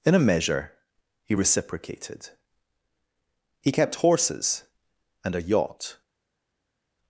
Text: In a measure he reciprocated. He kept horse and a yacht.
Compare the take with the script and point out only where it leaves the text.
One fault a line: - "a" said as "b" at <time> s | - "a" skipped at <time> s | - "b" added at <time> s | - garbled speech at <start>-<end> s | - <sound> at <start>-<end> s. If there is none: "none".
- "horse" said as "horses" at 4.0 s